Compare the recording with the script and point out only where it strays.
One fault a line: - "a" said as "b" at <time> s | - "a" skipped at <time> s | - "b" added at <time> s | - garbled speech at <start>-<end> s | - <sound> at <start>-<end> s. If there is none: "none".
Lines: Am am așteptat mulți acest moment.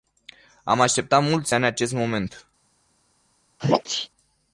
- "am" skipped at 0.8 s
- "ani" added at 1.5 s
- sneeze at 3.6-4.1 s